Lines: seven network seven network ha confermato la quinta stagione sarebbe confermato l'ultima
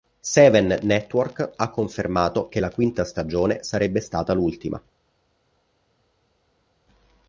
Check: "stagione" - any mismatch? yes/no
no